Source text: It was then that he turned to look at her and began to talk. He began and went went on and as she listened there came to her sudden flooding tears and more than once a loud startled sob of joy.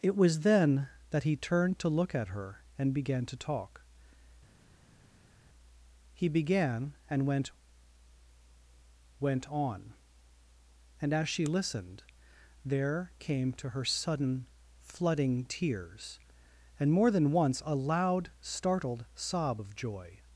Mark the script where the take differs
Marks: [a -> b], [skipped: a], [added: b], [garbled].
It was then that he turned to look at her and began to talk. He began and went went on and as she listened there came to her sudden flooding tears and more than once a loud startled sob of joy.